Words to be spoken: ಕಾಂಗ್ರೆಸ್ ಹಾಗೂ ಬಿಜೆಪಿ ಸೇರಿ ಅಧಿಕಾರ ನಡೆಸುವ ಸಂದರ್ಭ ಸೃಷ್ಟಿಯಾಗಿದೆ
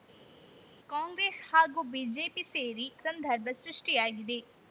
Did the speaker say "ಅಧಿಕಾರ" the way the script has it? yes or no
no